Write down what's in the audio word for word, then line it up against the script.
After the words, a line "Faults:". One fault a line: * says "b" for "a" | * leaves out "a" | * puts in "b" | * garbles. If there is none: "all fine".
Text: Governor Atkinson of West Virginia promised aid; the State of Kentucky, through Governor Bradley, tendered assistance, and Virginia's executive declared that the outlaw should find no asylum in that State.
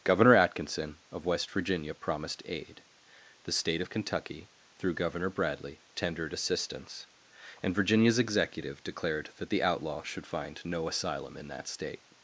Governor Atkinson of West Virginia promised aid; the State of Kentucky, through Governor Bradley, tendered assistance, and Virginia's executive declared that the outlaw should find no asylum in that State.
Faults:
all fine